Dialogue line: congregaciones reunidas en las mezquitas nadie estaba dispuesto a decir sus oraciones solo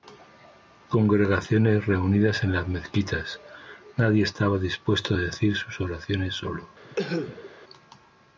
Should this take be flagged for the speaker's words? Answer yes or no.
no